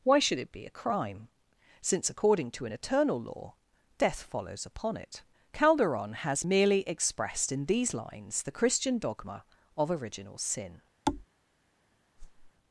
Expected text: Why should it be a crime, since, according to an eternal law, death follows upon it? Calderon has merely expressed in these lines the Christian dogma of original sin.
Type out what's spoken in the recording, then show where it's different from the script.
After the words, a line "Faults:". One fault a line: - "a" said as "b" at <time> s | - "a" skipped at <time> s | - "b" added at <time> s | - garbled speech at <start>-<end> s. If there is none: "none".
Why should it be a crime, since, according to an eternal law, death follows upon it? Calderon has merely expressed in these lines the Christian dogma of original sin.
Faults:
none